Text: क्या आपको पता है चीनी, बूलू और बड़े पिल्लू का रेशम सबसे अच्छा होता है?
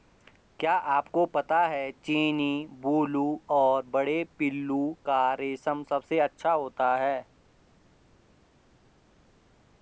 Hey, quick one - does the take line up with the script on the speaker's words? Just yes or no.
yes